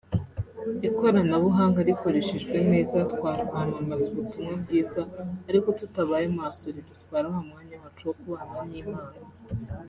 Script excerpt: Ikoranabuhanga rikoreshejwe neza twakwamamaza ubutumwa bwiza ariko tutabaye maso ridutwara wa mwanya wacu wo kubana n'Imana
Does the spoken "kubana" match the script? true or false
true